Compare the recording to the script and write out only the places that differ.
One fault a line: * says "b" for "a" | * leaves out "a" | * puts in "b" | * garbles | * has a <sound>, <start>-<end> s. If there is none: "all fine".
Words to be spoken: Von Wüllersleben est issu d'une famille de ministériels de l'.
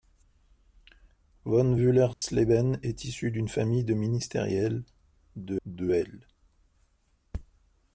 * has a dropout, 2.1-2.2 s
* puts in "de"